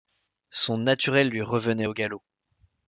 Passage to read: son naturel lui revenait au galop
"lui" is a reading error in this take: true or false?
false